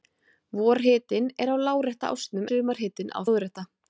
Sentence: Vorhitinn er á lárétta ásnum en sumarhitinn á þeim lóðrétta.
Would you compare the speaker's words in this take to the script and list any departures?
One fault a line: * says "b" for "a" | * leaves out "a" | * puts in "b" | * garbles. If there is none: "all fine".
* leaves out "en"
* leaves out "þeim"